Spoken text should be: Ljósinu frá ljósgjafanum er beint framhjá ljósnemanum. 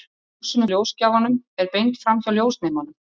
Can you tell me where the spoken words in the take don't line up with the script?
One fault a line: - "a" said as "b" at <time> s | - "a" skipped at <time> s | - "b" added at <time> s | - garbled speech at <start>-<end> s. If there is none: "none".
- "frá" skipped at 0.7 s